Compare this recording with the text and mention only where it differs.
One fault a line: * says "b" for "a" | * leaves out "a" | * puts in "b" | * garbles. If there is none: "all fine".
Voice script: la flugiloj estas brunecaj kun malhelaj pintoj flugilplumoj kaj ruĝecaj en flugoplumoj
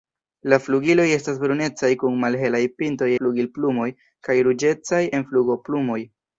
all fine